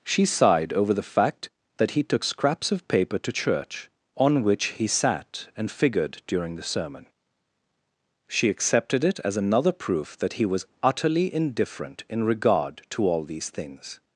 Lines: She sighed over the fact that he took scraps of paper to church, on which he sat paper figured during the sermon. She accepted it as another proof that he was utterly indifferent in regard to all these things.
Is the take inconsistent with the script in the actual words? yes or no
yes